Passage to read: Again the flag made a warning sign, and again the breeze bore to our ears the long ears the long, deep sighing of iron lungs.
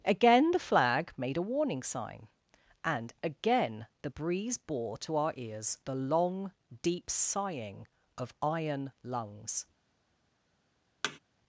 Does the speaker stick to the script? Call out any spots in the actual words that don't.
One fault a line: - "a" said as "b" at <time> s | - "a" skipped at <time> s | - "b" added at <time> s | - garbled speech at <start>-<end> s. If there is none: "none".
- "ears the long" skipped at 6.5 s